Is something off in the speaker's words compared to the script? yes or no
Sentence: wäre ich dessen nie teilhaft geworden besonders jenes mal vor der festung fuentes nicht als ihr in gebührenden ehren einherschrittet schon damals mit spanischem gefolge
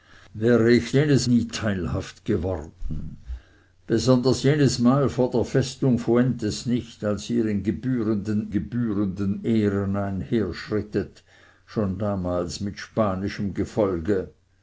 yes